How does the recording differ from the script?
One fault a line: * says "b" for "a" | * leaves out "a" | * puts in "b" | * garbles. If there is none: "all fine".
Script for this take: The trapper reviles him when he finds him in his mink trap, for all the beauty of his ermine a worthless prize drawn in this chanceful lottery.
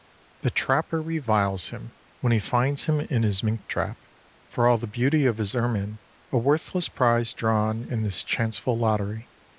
all fine